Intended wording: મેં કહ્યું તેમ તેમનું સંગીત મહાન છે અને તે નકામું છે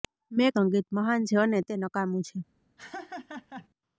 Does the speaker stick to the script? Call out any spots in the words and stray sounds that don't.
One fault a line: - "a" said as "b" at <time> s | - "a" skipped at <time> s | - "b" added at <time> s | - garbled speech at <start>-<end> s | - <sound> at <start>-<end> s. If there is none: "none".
- "કહ્યું તેમ તેમનું" skipped at 0.5 s
- laugh at 2.8-3.7 s